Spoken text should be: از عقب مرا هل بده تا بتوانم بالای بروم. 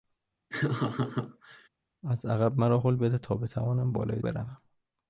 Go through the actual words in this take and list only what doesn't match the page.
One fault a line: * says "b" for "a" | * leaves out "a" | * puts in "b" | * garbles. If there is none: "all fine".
all fine